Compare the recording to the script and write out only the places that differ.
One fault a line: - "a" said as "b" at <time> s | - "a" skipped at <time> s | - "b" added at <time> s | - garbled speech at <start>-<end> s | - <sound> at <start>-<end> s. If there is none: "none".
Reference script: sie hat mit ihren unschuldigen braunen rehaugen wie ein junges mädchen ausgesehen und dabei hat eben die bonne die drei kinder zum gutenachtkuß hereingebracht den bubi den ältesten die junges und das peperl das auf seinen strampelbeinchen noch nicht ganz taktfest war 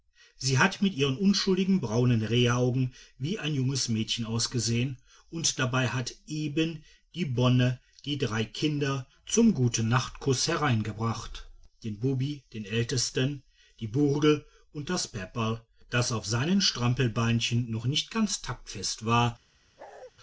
- "junges" said as "burgel" at 13.9 s
- bark at 19.8-20.1 s